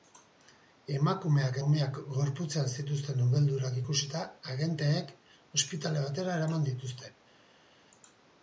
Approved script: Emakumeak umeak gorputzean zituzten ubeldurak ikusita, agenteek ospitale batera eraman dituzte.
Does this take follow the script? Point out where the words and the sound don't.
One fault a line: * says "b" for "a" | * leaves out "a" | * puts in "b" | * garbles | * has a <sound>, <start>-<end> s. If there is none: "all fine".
all fine